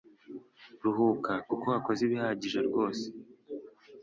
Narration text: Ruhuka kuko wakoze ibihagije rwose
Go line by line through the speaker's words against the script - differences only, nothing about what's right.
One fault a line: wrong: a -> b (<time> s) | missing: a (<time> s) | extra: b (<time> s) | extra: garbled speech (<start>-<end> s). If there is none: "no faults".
no faults